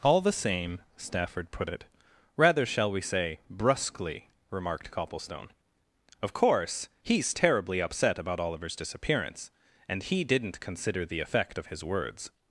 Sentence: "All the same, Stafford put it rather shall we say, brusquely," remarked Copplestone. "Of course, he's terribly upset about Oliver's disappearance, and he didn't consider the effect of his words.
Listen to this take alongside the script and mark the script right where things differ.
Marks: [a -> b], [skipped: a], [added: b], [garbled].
"All the same, Stafford put it rather shall we say, brusquely," remarked Copplestone. "Of course, he's terribly upset about Oliver's disappearance, and he didn't consider the effect of his words.